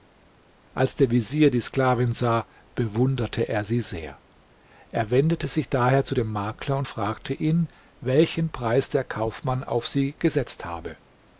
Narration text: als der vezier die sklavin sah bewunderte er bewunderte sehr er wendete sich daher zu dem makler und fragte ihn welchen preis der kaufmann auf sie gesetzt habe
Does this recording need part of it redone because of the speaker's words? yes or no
yes